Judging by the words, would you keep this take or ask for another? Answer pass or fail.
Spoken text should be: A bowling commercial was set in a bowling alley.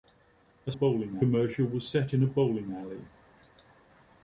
pass